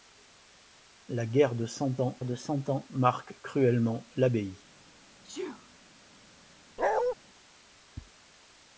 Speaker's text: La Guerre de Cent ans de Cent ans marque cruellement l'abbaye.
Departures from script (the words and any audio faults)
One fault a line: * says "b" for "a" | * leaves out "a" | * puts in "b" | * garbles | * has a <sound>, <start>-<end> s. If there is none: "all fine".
* has a sneeze, 5.2-5.7 s
* has a bark, 6.8-7.1 s